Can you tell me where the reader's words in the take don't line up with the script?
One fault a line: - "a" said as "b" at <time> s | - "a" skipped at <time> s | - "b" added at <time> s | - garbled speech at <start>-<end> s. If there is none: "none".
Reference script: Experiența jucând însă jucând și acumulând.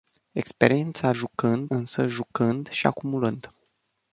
none